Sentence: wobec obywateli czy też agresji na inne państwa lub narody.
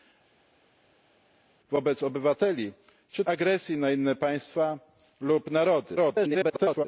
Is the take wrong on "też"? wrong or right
wrong